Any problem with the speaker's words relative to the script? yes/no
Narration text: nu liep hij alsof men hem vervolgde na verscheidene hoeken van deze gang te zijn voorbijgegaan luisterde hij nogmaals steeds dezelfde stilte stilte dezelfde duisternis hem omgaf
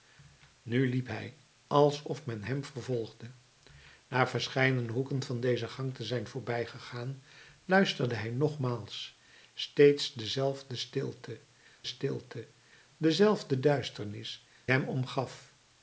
no